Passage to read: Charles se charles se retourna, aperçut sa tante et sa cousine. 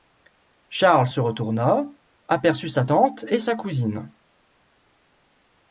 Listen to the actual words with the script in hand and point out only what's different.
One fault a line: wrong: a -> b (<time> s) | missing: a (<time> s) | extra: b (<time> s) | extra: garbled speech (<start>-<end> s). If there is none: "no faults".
missing: charles se (1.2 s)